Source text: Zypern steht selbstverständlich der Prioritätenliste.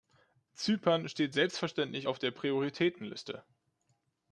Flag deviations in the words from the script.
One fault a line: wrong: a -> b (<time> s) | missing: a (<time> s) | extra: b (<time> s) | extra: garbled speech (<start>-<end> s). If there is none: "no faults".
extra: auf (2.0 s)